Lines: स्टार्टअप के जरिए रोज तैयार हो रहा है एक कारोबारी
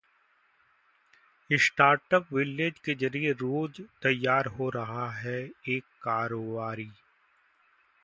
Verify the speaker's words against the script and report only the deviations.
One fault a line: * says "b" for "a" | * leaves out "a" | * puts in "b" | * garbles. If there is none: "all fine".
* puts in "विलेज"